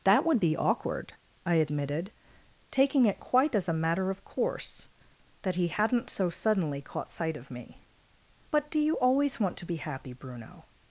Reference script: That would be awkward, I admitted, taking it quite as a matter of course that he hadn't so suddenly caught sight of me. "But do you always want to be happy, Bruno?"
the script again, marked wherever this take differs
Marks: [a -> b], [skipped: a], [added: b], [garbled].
That would be awkward, I admitted, taking it quite as a matter of course that he hadn't so suddenly caught sight of me. "But do you always want to be happy, Bruno?"